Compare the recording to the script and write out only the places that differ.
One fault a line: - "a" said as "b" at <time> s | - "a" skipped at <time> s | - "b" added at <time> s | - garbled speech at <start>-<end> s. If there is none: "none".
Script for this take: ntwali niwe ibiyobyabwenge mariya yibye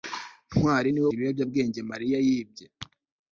none